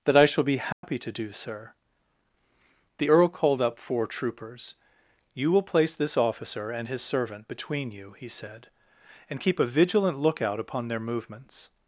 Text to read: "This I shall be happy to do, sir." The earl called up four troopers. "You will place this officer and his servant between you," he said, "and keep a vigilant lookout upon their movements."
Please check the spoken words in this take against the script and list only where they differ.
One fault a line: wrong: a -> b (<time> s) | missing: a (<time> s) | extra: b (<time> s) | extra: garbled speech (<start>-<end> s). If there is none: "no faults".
wrong: This -> That (0.1 s)